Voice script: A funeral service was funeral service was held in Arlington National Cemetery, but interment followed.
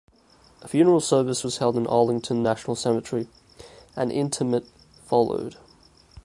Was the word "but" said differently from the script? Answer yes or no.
yes